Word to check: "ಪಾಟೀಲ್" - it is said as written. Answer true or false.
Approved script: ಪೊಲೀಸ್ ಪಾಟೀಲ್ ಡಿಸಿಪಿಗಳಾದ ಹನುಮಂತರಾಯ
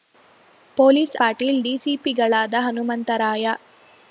true